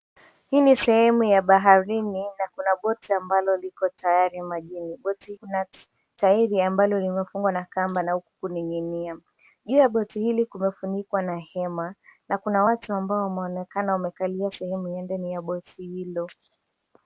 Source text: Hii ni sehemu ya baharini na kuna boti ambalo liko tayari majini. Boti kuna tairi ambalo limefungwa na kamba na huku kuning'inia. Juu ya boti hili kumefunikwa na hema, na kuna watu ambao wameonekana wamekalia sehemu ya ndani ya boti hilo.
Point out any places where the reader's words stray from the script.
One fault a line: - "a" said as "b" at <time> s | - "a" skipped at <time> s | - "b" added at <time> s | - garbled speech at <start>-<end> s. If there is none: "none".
none